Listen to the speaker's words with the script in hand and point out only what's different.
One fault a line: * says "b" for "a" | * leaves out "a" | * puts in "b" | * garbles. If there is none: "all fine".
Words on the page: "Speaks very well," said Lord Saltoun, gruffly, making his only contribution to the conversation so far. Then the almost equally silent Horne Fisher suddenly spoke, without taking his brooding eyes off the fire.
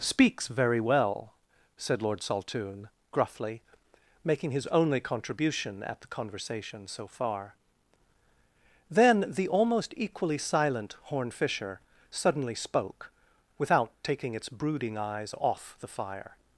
* says "at" for "to"
* says "its" for "his"